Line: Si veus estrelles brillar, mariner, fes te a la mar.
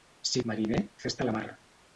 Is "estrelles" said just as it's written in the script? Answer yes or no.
no